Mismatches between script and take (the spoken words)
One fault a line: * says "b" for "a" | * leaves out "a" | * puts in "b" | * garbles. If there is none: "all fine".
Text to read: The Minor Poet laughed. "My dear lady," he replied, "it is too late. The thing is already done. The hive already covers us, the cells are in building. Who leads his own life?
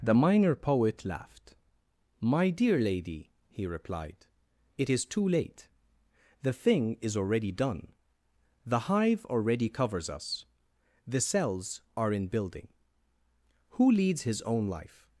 all fine